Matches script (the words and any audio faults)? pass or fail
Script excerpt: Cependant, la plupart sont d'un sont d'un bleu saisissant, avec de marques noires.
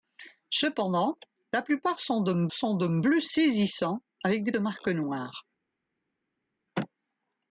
pass